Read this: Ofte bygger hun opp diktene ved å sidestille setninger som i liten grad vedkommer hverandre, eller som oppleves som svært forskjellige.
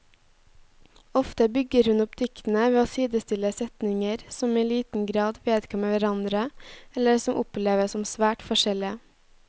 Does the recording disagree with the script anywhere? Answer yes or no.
no